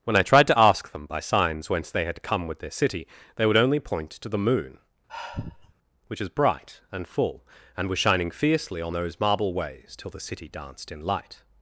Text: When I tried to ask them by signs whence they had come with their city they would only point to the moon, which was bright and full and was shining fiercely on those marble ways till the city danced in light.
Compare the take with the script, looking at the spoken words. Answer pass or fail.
fail